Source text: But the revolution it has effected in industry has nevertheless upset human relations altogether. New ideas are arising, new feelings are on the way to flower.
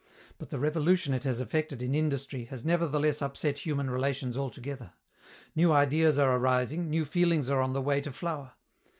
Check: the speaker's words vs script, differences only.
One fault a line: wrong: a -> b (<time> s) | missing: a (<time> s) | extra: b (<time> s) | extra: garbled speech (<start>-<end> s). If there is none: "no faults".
no faults